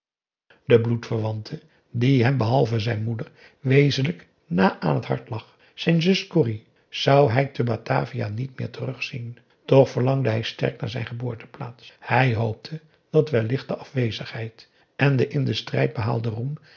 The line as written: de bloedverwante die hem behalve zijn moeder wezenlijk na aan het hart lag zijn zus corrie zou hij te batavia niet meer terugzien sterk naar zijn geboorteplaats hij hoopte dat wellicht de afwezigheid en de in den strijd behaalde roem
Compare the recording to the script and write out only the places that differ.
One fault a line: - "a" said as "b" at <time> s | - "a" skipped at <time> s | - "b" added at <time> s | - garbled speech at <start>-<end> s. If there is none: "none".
- "toch verlangde hij" added at 9.7 s